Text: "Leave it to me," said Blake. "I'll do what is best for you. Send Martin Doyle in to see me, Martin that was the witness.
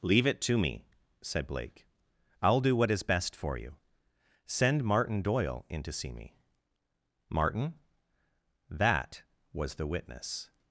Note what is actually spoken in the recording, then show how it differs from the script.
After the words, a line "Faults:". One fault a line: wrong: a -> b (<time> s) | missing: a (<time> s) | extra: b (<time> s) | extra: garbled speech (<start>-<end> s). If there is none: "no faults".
"Leave it to me," said Blake. "I'll do what is best for you. Send Martin Doyle in to see me, Martin that was the witness.
Faults:
no faults